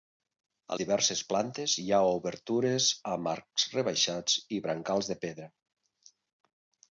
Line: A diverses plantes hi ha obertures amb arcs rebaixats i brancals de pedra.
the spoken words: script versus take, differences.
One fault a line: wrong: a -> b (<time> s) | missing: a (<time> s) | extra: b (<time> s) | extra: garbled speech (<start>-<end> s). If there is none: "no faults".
no faults